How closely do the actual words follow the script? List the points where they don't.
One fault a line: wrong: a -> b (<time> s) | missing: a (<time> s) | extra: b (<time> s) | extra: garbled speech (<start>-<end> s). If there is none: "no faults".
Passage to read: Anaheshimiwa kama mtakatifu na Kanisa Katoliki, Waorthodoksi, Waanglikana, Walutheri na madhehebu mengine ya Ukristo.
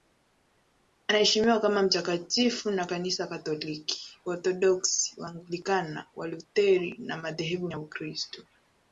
missing: mengine (7.7 s)